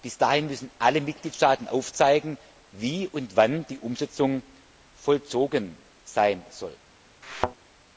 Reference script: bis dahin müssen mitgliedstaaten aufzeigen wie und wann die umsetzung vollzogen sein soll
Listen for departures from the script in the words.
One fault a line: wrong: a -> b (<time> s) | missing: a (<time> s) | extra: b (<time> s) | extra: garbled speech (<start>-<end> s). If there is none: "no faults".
extra: alle (0.8 s)